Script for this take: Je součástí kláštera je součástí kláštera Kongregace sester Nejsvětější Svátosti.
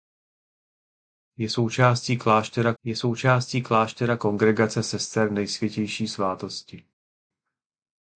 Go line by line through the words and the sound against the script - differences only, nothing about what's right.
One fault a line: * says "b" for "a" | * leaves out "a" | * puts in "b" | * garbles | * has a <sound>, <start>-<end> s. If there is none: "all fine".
all fine